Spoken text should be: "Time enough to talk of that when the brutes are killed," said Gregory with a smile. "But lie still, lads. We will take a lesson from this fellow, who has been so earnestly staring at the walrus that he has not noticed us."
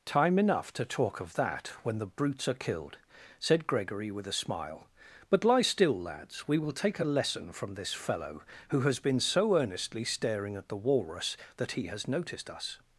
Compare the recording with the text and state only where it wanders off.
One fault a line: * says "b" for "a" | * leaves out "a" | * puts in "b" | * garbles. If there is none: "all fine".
* leaves out "not"